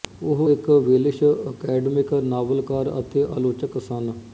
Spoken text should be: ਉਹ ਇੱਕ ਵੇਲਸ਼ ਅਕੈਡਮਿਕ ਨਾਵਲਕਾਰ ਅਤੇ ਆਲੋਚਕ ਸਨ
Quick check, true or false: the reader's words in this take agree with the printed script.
true